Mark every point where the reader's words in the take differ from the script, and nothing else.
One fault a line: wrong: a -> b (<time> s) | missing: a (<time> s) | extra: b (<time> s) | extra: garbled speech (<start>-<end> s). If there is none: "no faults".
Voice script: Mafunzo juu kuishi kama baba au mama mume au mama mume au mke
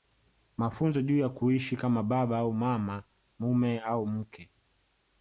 extra: ya (1.2 s)
missing: mama mume au (4.1 s)